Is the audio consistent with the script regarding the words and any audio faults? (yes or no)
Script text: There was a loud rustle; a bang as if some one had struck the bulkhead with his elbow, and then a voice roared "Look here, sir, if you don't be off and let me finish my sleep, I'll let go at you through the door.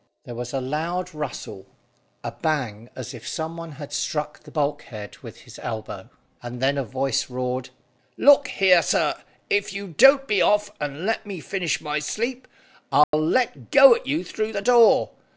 no